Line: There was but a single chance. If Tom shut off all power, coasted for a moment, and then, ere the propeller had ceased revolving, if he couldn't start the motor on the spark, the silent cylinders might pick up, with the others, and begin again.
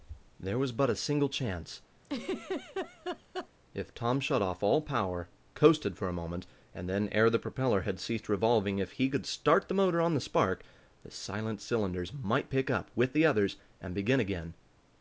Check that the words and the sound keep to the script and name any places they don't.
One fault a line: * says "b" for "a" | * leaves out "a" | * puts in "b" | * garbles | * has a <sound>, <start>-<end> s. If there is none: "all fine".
* has a laugh, 2.0-3.5 s
* says "could" for "couldn't"